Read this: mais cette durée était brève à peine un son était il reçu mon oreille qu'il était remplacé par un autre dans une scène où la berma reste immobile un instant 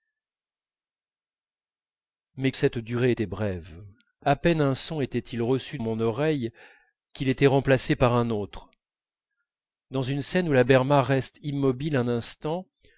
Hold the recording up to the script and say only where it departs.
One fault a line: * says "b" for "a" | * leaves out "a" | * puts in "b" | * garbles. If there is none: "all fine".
all fine